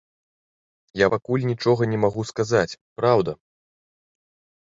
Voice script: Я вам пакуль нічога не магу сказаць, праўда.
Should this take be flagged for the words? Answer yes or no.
yes